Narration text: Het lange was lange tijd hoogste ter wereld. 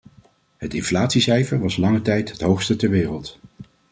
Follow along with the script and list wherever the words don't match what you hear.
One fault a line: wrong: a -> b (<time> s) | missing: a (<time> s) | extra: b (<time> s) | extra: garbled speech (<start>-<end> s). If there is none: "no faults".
wrong: lange -> inflatiecijfer (0.7 s)
extra: het (2.3 s)